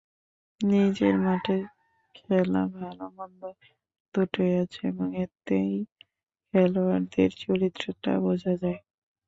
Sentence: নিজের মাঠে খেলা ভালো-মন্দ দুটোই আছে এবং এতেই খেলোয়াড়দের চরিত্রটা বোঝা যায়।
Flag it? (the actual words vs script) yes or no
no